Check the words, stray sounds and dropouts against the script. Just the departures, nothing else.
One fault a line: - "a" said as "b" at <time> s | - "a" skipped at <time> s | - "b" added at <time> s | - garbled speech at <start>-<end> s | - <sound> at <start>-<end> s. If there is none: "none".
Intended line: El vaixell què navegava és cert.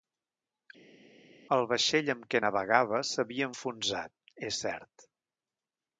- "amb" added at 2.1 s
- "s'havia enfonsat" added at 3.1 s